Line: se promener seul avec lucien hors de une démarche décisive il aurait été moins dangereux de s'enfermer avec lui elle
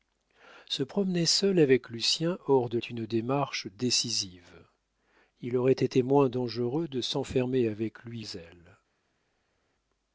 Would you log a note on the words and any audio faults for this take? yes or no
no